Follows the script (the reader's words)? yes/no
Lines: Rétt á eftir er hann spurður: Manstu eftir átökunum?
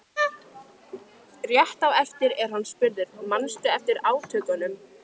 yes